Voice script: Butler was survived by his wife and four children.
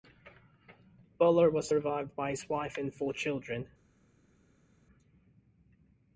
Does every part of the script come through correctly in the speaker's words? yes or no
yes